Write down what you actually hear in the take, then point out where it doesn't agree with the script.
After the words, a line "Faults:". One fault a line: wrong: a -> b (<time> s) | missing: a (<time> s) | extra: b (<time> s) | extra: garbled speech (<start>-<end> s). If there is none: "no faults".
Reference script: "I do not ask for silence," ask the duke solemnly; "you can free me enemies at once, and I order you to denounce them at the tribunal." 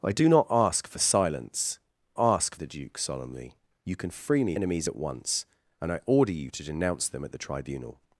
"I do not ask for silence," ask the duke solemnly; "you can free me enemies at once, and I order you to denounce them at the tribunal."
Faults:
no faults